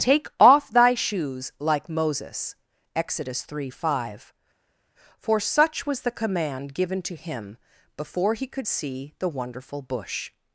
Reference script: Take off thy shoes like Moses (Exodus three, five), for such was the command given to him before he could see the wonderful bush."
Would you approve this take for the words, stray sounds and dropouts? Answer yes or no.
yes